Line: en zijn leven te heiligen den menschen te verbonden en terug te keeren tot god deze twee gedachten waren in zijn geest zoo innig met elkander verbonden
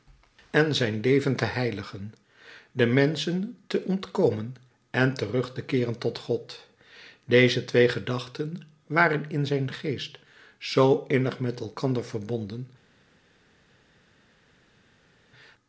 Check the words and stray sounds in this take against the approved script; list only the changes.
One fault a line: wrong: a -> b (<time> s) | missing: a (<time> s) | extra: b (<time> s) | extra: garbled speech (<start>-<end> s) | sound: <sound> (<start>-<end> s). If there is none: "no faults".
wrong: verbonden -> ontkomen (3.8 s)